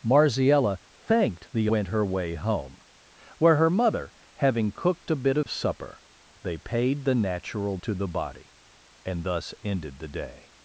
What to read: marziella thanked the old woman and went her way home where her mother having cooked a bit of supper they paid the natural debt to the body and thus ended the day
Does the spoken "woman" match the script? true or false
false